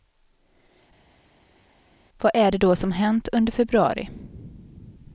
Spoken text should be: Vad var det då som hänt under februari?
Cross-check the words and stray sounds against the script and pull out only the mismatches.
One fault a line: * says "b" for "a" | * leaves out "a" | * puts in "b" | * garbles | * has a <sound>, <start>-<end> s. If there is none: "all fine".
* says "är" for "var"